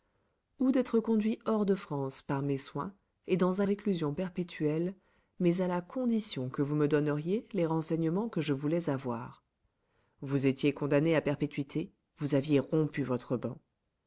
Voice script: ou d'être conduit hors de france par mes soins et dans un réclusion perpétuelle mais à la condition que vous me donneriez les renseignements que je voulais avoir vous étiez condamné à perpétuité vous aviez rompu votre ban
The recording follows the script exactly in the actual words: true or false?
true